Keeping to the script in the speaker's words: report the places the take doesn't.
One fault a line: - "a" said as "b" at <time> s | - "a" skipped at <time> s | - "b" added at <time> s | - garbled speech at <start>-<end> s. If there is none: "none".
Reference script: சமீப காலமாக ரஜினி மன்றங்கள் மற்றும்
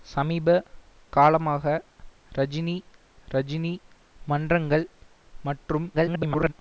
- "ரஜினி" added at 3.3 s
- garbled speech at 5.9-6.5 s